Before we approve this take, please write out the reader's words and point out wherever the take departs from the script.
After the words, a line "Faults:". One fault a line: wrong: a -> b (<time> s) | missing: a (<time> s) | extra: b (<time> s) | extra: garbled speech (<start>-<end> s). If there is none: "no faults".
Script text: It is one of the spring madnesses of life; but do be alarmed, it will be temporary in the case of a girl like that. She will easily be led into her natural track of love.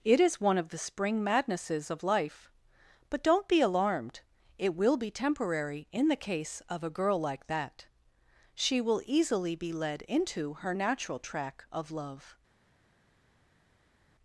It is one of the spring madnesses of life; but don't be alarmed, it will be temporary in the case of a girl like that. She will easily be led into her natural track of love.
Faults:
wrong: do -> don't (3.2 s)